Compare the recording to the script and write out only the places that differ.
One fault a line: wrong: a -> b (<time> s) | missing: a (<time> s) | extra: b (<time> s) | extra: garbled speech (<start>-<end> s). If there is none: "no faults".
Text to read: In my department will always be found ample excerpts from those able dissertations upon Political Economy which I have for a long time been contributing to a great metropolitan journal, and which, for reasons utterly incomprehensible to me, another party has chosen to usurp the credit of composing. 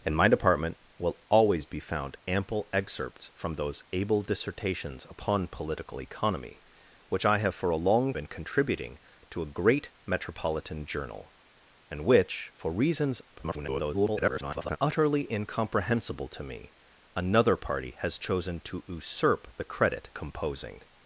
missing: time (8.1 s)
extra: garbled speech (13.3-14.8 s)
missing: of (20.1 s)